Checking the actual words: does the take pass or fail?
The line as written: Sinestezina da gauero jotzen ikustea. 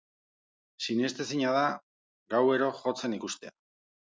pass